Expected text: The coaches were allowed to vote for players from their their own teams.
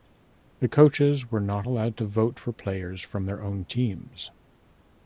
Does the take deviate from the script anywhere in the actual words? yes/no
yes